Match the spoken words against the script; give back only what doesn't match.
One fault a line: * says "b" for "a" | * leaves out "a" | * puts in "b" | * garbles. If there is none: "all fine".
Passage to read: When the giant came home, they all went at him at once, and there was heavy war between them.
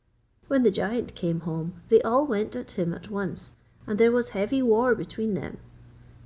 all fine